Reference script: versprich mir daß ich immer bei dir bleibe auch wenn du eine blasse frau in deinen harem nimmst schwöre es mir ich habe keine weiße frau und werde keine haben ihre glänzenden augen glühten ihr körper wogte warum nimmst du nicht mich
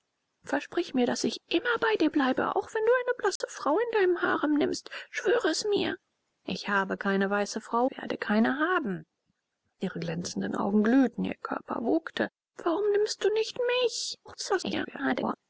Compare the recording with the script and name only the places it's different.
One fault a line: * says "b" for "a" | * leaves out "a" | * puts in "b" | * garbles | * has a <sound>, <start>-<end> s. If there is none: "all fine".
* has a dropout, 3.4-3.4 s
* leaves out "und"
* garbles